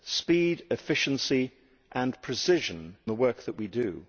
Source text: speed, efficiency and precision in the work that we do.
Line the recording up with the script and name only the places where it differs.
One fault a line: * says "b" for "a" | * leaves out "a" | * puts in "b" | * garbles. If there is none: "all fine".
* leaves out "in"